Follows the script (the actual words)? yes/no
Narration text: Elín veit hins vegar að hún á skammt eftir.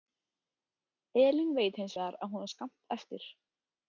yes